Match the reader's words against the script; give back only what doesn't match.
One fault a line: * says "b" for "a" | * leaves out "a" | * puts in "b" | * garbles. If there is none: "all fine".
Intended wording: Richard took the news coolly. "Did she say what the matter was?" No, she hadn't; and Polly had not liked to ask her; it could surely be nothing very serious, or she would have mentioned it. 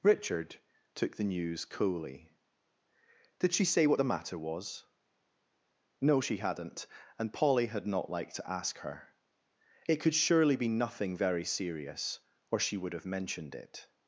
all fine